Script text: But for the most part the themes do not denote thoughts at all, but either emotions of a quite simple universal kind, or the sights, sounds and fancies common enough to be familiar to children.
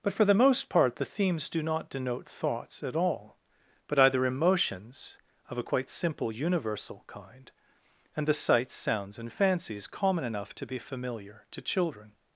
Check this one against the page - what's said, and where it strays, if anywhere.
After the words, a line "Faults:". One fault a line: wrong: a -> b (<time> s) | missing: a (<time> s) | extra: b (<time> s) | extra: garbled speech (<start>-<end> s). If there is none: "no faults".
But for the most part the themes do not denote thoughts at all, but either emotions of a quite simple universal kind, and the sights, sounds and fancies common enough to be familiar to children.
Faults:
wrong: or -> and (8.2 s)